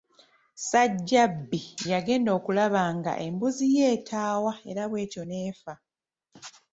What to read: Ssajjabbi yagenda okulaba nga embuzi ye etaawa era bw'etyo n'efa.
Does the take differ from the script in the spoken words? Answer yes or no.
no